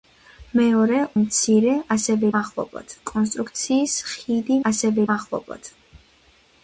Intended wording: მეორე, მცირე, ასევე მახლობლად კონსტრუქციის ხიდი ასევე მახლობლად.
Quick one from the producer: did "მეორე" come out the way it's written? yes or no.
yes